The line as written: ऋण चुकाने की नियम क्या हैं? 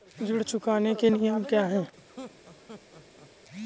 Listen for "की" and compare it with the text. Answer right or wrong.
wrong